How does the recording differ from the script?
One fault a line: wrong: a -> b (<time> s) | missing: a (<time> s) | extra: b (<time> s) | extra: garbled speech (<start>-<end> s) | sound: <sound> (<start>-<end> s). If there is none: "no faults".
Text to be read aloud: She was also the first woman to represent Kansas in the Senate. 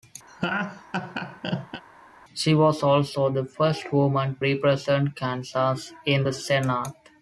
sound: laugh (0.3-1.8 s)
missing: to (4.4 s)